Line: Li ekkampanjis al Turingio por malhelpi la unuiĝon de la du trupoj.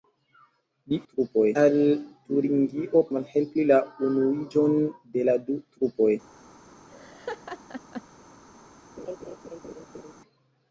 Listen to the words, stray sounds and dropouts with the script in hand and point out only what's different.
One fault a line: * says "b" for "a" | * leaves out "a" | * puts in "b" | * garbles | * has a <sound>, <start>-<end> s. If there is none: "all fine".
* says "trupoj" for "ekkampanjis"
* leaves out "por"
* has a laugh, 6.9-8.0 s
* has a laugh, 9.0-10.1 s